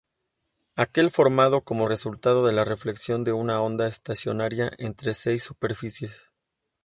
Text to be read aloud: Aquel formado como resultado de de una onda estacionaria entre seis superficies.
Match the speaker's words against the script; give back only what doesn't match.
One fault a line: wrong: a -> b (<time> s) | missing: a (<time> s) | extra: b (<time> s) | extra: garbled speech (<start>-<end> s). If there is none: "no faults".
extra: la reflexión (2.5 s)